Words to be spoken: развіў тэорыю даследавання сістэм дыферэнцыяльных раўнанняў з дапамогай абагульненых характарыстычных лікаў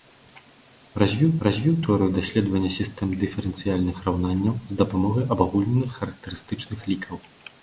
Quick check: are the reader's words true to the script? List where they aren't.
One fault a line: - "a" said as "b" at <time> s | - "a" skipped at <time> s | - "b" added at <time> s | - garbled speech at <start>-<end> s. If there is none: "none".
- "развіў" added at 1.5 s